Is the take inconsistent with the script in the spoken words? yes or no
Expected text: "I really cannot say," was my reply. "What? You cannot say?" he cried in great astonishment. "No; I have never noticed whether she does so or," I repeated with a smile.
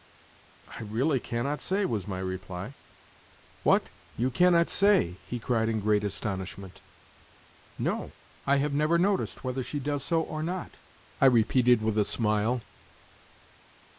yes